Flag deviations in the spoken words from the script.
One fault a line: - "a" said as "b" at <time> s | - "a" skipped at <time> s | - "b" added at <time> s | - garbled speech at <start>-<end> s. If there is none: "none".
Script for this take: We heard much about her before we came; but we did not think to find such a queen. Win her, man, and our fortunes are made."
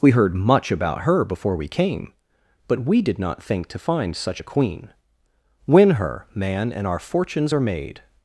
none